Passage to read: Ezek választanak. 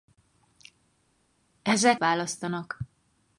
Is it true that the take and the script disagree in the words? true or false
false